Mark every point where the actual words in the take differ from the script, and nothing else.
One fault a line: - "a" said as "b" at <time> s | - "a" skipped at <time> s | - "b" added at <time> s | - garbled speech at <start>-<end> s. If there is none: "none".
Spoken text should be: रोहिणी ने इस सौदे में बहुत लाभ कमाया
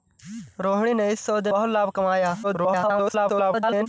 - "में" skipped at 1.5 s
- garbled speech at 2.4-3.9 s